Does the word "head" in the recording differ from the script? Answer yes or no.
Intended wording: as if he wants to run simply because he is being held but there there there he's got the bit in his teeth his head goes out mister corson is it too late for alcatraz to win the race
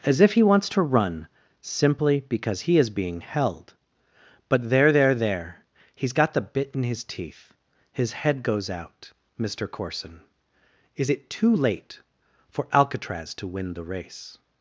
no